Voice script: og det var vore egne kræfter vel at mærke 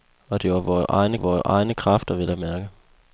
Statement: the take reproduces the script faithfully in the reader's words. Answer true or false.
false